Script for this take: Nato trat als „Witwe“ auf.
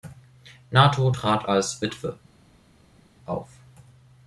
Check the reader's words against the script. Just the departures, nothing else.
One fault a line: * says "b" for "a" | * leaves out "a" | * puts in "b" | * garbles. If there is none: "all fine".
all fine